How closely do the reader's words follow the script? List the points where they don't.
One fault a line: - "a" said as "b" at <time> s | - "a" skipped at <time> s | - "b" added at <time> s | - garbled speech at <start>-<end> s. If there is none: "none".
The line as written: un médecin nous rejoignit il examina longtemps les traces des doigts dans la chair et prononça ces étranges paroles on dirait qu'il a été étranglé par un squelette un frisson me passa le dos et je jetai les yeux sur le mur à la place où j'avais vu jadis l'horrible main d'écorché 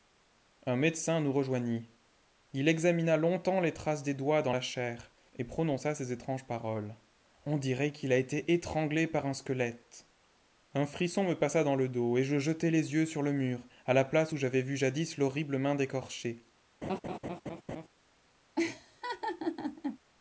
- "dans" added at 11.6 s